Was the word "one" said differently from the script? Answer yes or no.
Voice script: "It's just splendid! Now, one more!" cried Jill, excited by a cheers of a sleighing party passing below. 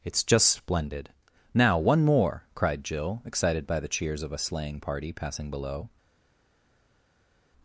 no